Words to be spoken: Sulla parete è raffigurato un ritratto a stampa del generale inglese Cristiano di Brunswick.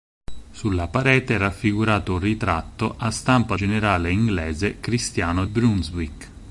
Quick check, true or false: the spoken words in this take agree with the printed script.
false